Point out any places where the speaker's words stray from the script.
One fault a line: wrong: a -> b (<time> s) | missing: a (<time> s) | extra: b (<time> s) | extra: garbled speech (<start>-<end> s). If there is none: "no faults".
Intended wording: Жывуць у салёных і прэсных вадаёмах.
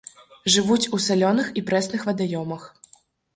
no faults